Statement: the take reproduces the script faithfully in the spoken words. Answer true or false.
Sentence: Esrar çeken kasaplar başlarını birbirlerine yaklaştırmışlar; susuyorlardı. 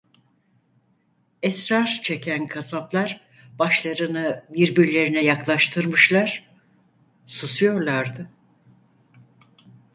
true